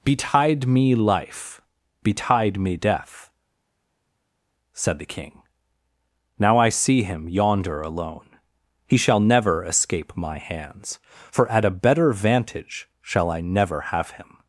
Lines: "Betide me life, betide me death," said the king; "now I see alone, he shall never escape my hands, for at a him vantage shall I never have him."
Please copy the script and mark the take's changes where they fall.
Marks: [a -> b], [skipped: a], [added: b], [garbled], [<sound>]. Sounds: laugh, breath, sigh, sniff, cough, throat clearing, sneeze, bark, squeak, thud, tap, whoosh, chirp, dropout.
"Betide me life, betide me death," said the king; "now I see [added: him yonder] alone, he shall never escape my hands, for at a [him -> better] vantage shall I never have him."